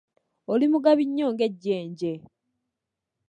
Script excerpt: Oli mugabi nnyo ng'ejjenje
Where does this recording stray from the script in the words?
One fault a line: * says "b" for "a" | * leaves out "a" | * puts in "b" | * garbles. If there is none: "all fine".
all fine